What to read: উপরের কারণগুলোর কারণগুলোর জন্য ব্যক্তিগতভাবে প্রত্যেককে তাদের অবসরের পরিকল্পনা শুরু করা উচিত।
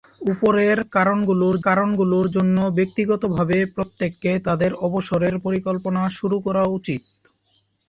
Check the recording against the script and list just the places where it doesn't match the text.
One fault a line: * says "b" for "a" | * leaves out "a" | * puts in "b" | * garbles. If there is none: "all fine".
all fine